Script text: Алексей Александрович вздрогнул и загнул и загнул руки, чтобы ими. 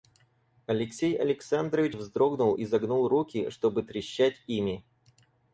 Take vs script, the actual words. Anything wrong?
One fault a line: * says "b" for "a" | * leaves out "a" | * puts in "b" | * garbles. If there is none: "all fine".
* leaves out "и загнул"
* puts in "трещать"